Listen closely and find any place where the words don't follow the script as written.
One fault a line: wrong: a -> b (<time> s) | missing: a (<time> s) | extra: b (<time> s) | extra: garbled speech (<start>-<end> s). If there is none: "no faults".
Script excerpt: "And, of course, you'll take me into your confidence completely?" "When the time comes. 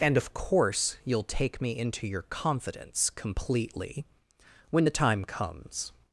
no faults